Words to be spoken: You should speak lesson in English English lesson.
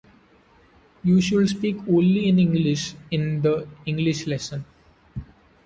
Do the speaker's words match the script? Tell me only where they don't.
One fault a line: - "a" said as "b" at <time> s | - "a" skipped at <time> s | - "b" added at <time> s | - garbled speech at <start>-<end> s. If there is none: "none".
- "lesson" said as "only" at 1.9 s
- "in the" added at 3.1 s